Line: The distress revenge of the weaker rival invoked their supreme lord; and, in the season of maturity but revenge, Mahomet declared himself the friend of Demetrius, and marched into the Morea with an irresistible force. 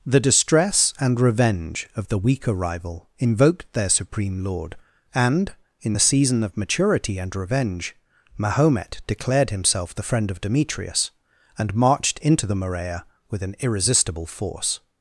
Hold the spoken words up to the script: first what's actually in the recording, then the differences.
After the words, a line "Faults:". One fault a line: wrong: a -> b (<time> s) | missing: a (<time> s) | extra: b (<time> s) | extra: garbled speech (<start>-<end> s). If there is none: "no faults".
The distress and revenge of the weaker rival invoked their supreme lord; and, in the season of maturity and revenge, Mahomet declared himself the friend of Demetrius, and marched into the Morea with an irresistible force.
Faults:
extra: and (1.0 s)
wrong: but -> and (7.2 s)